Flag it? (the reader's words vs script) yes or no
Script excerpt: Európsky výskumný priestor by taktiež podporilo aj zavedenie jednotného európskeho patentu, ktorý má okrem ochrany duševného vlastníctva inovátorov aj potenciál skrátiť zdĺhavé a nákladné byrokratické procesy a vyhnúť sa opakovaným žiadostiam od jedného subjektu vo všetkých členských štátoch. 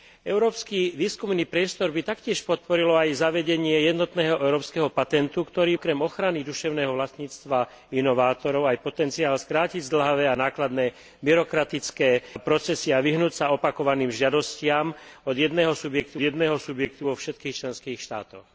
yes